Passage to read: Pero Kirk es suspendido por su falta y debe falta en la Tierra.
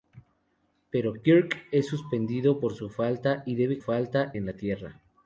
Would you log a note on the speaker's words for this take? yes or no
no